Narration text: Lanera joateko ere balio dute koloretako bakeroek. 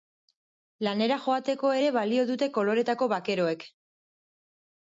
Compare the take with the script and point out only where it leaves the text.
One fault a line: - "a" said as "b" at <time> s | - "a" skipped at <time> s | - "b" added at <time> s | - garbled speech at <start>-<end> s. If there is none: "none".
none